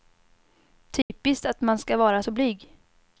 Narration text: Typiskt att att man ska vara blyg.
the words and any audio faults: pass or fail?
fail